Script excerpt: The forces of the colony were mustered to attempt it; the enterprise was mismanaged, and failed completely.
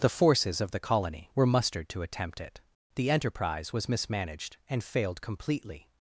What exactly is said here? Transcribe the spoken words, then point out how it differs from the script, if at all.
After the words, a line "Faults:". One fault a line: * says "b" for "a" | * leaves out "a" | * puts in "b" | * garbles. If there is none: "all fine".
The forces of the colony were mustered to attempt it; the enterprise was mismanaged, and failed completely.
Faults:
all fine